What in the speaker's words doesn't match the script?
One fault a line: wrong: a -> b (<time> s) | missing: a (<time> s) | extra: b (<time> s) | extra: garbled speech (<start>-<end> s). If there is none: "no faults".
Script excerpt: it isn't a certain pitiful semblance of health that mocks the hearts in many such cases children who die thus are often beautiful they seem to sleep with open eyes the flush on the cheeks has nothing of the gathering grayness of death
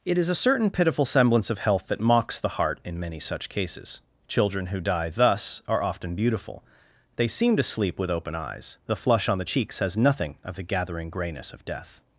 wrong: isn't -> is (0.2 s)
wrong: hearts -> heart (2.5 s)